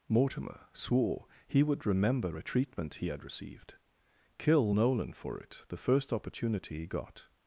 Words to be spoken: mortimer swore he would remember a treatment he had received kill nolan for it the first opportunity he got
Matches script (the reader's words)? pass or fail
pass